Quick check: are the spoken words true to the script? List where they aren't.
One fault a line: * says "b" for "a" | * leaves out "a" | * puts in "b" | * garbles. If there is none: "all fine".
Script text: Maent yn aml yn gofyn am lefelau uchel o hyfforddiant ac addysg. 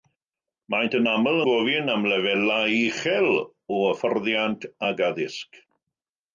* leaves out "yn"